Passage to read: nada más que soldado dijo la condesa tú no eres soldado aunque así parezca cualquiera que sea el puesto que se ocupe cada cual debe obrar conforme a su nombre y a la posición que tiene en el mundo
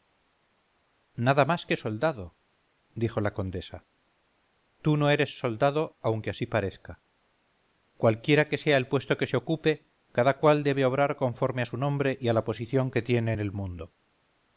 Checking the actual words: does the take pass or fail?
pass